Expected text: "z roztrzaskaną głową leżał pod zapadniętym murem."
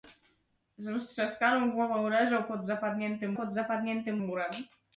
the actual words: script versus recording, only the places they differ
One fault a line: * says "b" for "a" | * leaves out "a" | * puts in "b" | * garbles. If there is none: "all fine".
* puts in "pod zapadniętym"